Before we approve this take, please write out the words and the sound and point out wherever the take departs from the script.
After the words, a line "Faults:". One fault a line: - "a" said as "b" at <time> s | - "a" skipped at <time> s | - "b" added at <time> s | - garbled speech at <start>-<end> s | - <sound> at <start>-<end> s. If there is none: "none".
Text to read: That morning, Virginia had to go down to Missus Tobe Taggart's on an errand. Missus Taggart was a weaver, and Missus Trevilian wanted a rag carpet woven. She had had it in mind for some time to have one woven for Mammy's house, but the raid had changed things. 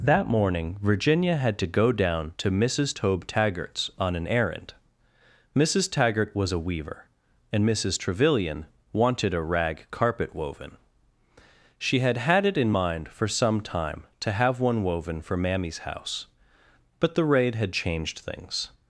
That morning, Virginia had to go down to Missus Tobe Taggart's on an errand. Missus Taggart was a weaver, and Missus Trevilian wanted a rag carpet woven. She had had it in mind for some time to have one woven for Mammy's house, but the raid had changed things.
Faults:
none